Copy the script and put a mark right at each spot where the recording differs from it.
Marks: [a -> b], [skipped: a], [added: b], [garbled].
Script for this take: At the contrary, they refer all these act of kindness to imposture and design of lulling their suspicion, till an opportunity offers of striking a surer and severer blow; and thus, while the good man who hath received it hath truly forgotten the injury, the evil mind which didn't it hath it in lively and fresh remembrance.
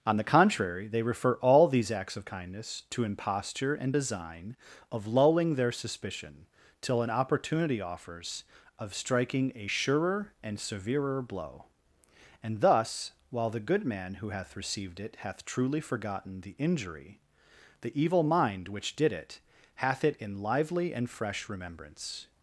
[At -> On] the contrary, they refer all these [act -> acts] of kindness to imposture and design of lulling their suspicion, till an opportunity offers of striking a surer and severer blow; and thus, while the good man who hath received it hath truly forgotten the injury, the evil mind which [didn't -> did] it hath it in lively and fresh remembrance.